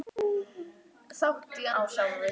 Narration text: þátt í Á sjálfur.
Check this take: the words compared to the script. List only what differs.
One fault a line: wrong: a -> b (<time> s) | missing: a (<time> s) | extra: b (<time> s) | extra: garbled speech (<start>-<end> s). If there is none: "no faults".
no faults